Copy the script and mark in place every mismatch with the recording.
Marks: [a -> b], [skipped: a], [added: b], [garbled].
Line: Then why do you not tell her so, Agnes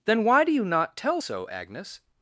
Then why do you not tell [skipped: her] so, Agnes